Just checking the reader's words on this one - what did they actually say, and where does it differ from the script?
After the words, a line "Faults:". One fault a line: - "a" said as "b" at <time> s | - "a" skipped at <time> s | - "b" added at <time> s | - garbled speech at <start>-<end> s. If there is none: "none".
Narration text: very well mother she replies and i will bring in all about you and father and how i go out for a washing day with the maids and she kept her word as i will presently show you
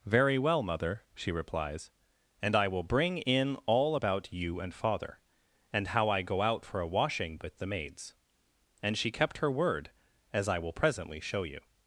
very well mother she replies and i will bring in all about you and father and how i go out for a washing with the maids and she kept her word as i will presently show you
Faults:
- "day" skipped at 7.4 s